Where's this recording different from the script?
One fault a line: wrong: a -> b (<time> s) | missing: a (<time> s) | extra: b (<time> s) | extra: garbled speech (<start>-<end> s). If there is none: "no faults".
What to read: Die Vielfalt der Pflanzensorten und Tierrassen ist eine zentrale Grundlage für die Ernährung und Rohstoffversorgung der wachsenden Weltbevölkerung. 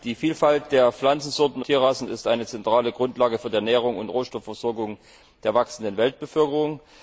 missing: und (1.6 s)